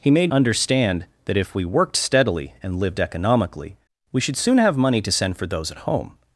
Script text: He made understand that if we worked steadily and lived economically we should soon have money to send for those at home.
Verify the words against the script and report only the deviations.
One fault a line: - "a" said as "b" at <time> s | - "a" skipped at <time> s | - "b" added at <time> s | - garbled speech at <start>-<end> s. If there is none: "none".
none